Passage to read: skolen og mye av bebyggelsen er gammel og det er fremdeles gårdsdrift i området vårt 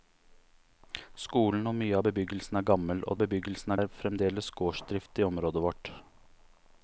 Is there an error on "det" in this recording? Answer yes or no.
yes